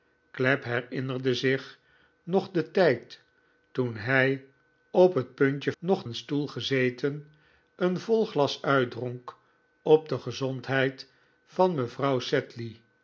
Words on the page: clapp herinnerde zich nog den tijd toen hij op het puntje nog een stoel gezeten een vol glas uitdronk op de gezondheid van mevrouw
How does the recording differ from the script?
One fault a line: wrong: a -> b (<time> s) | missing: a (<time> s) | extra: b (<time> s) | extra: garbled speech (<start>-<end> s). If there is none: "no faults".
no faults